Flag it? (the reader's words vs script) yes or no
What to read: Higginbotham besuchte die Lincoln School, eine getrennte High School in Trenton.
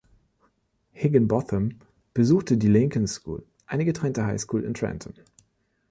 no